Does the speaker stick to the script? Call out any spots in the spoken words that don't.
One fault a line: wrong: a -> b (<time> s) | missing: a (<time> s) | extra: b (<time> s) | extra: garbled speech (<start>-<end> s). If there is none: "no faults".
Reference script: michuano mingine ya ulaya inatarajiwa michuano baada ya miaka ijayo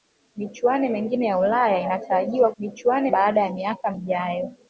no faults